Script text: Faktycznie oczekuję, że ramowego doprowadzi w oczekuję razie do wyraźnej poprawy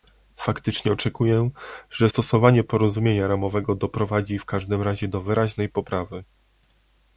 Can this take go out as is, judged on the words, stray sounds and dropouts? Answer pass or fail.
fail